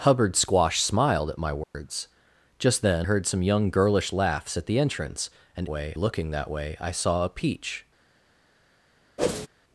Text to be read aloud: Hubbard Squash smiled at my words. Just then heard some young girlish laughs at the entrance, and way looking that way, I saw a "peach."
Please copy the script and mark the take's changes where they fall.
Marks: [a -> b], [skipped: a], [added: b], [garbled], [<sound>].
Hubbard Squash smiled at my words. [dropout] Just then heard some young girlish laughs at the entrance, and way looking that way, I saw a "peach." [whoosh]